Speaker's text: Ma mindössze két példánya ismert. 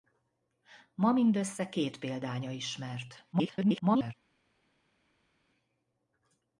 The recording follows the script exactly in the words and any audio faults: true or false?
false